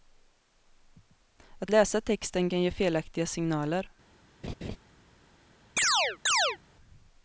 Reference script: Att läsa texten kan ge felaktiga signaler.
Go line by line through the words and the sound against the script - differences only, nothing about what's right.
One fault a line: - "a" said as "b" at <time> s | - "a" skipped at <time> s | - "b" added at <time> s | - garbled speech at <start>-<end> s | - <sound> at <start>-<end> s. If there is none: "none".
- laugh at 4.4-4.8 s
- chirp at 5.8-6.6 s